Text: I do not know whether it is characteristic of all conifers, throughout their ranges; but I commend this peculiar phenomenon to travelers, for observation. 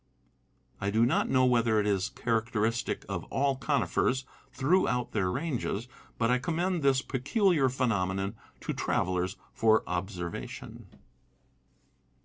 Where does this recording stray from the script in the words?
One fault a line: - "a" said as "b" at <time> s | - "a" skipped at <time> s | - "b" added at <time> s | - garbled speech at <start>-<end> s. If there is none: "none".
none